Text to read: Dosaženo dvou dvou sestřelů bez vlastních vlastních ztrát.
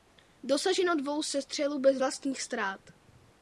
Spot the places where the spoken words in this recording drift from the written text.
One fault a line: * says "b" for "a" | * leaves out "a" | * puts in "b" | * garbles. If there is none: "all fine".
* leaves out "dvou"
* leaves out "vlastních"